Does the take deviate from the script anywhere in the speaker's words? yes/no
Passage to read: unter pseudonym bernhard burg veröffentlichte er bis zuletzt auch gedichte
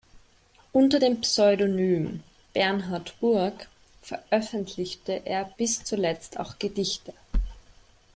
yes